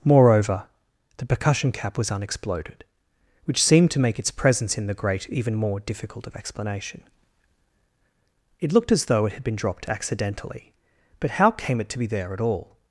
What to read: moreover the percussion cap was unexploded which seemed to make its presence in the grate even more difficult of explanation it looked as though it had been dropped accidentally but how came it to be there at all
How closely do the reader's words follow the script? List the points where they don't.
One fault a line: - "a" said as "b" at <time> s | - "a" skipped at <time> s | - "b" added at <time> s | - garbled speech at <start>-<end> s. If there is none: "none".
none